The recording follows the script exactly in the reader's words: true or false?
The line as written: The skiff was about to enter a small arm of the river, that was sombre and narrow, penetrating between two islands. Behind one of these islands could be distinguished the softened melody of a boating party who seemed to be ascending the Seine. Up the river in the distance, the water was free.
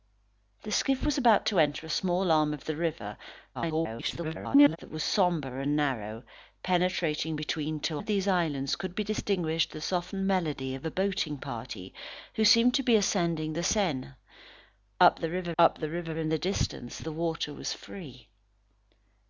false